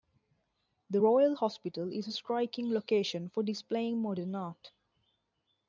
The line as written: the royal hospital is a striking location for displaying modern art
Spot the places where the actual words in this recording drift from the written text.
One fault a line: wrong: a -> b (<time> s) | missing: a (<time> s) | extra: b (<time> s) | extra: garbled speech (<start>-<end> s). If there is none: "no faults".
no faults